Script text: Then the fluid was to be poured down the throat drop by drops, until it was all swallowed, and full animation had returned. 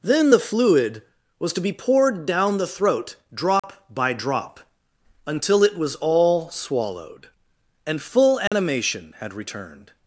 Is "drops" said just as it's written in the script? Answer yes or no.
no